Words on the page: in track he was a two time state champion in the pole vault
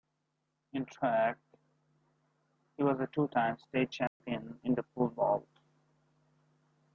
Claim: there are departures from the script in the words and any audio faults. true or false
true